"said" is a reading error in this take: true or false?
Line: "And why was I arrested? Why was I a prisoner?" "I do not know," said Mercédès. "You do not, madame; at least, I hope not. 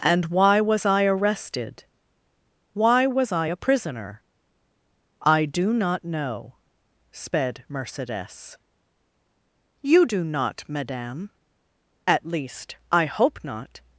true